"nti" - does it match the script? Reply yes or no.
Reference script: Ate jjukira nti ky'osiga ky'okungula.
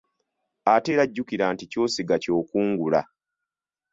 yes